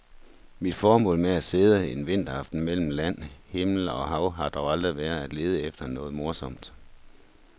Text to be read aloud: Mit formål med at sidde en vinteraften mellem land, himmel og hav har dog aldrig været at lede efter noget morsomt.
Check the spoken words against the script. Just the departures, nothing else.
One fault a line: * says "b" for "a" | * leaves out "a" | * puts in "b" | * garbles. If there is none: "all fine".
all fine